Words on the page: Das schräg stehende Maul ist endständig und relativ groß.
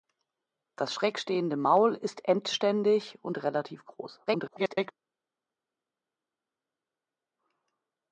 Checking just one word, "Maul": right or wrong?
right